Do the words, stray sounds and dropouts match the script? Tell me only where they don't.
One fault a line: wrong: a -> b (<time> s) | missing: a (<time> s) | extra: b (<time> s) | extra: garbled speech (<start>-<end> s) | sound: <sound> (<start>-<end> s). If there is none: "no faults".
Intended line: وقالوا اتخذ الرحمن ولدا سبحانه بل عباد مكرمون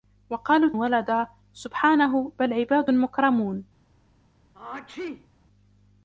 missing: اتخذ الرحمن (0.7 s)
sound: sneeze (4.5-5.3 s)